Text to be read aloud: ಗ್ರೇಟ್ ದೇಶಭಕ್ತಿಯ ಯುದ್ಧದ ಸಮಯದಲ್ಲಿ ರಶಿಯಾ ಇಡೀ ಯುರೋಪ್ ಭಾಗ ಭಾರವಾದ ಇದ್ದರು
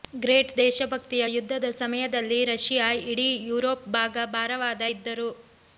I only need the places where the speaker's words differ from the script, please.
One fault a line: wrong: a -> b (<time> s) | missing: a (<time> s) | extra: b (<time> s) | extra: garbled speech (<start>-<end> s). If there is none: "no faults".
no faults